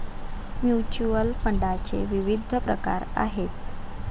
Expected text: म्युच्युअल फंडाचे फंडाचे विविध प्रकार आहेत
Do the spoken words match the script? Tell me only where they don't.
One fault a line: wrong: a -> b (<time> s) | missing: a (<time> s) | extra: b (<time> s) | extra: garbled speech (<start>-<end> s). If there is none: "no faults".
missing: फंडाचे (2.0 s)